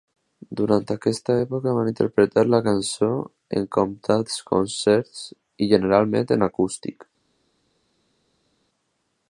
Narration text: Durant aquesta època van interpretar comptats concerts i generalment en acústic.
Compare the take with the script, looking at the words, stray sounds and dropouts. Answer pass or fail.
fail